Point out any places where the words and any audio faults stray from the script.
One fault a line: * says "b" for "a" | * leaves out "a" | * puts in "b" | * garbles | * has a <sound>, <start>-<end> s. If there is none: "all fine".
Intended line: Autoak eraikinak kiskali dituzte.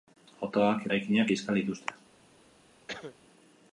* has a cough, 2.9-3.2 s